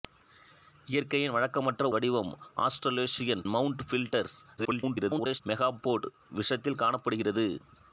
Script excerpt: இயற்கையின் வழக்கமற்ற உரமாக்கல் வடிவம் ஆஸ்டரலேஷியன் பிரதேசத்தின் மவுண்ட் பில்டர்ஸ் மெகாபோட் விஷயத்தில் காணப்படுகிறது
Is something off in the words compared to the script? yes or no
yes